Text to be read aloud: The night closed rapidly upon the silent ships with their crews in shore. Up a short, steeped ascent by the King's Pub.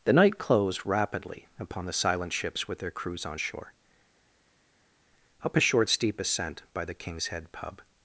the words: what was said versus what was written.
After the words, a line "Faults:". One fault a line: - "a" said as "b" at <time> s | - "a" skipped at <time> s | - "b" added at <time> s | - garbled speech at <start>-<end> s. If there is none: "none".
The night closed rapidly upon the silent ships with their crews on shore. Up a short, steep ascent by the King's Head pub.
Faults:
- "in" said as "on" at 3.3 s
- "steeped" said as "steep" at 5.9 s
- "Head" added at 7.3 s